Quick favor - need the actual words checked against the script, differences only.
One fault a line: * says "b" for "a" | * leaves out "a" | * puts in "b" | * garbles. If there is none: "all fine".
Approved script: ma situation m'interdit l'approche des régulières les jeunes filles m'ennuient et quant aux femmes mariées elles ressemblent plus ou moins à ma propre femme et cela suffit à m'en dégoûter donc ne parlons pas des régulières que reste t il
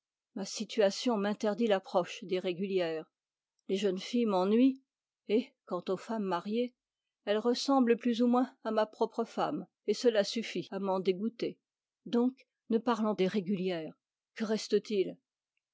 * leaves out "pas"